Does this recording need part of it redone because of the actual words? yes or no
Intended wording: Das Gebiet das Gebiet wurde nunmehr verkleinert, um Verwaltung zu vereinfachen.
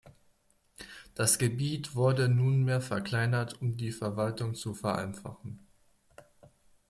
yes